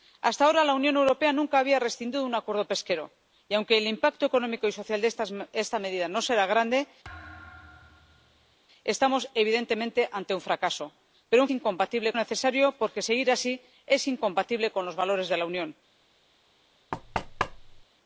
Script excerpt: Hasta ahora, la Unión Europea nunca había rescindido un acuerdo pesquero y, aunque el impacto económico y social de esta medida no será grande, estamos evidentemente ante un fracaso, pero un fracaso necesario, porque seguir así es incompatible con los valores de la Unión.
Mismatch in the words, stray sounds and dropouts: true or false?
true